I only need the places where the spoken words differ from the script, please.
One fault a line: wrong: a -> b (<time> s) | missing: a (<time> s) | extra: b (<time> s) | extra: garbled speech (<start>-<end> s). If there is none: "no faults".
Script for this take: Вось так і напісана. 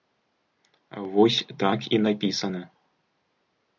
no faults